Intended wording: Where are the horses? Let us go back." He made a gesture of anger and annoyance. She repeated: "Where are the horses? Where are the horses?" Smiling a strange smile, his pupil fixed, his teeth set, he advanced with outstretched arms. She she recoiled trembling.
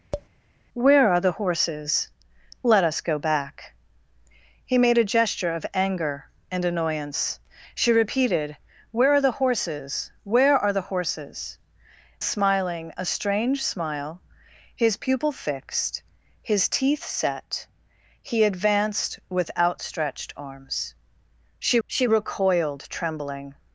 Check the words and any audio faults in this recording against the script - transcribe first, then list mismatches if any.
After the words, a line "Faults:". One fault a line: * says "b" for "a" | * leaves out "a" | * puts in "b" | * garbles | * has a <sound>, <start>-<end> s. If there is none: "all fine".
Where are the horses? Let us go back." He made a gesture of anger and annoyance. She repeated: "Where are the horses? Where are the horses?" Smiling a strange smile, his pupil fixed, his teeth set, he advanced with outstretched arms. She she recoiled trembling.
Faults:
* has a tap, 0.1-0.3 s